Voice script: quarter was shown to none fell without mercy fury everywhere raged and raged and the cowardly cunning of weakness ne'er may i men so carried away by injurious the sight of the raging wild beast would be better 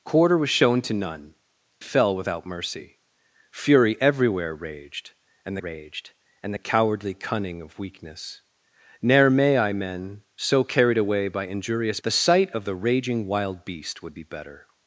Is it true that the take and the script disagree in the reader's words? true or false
false